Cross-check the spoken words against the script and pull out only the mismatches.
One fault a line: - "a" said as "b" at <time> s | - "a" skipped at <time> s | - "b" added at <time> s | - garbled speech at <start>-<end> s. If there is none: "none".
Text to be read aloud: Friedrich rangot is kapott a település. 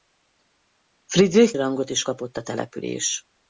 none